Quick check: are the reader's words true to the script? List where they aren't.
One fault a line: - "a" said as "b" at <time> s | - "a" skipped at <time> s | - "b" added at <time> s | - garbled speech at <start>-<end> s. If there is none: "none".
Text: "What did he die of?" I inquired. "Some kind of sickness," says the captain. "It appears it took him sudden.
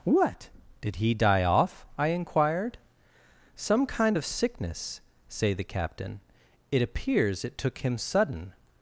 - "of" said as "off" at 1.4 s
- "says" said as "say" at 5.3 s